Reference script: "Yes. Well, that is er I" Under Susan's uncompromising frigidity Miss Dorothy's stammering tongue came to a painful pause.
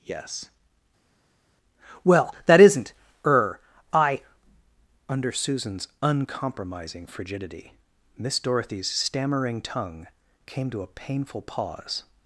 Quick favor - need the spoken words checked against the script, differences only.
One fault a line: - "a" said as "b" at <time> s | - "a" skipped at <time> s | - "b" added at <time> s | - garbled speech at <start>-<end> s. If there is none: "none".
- "is" said as "isn't" at 2.6 s